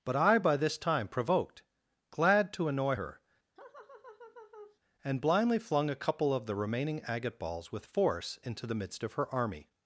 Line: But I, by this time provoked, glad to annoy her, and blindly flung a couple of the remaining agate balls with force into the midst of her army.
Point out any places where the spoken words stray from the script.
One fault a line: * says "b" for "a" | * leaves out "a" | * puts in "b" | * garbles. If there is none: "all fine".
all fine